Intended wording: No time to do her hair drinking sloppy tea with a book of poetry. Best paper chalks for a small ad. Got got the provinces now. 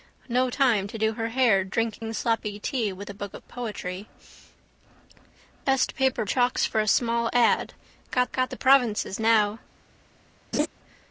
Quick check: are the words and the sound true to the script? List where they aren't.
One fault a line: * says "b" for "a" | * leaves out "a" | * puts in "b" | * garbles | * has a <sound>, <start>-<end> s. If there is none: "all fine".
* has a dropout, 2.0-2.0 s
* has a laugh, 10.5-10.7 s